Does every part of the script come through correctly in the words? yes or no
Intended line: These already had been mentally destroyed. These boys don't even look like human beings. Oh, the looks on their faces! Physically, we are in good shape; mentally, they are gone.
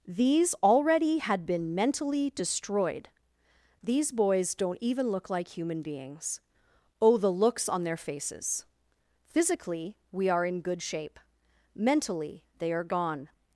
yes